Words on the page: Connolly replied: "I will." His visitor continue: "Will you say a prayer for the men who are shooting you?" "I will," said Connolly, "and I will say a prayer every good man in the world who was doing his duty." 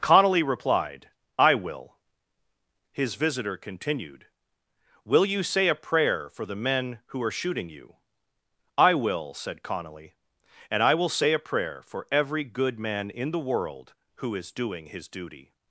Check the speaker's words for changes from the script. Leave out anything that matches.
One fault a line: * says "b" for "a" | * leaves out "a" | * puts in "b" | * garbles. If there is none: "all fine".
* says "continued" for "continue"
* puts in "for"
* says "is" for "was"